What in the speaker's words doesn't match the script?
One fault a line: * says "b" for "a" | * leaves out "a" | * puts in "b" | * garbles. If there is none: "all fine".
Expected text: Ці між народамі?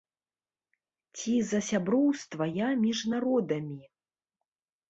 * puts in "за сяброўства я"